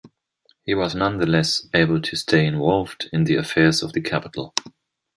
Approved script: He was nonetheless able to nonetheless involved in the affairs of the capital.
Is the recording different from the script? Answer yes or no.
yes